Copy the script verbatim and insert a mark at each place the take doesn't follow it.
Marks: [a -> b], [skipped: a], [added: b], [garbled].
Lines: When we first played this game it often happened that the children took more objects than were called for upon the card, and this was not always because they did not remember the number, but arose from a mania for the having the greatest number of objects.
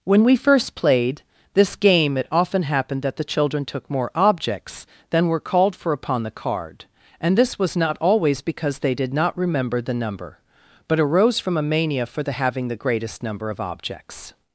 When we first played this game it often happened that the children took more objects than were called for upon the card, and this was not always because they did not remember the number, but arose from a mania for the having the greatest number of objects.